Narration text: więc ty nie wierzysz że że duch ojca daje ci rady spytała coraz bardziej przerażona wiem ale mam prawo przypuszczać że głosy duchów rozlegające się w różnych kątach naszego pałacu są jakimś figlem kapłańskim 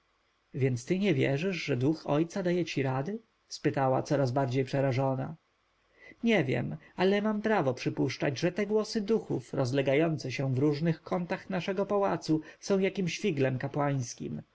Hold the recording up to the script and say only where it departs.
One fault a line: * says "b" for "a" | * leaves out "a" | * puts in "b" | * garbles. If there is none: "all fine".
* leaves out "że"
* puts in "nie"
* puts in "te"